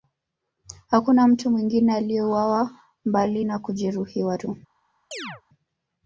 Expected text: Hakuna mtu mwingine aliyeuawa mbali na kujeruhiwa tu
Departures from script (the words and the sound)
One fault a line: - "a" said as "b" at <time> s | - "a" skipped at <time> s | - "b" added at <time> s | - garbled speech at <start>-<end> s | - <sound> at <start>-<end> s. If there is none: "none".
- chirp at 5.1-5.4 s